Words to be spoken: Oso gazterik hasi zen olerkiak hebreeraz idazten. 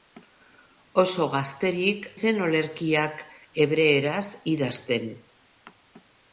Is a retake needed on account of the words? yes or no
yes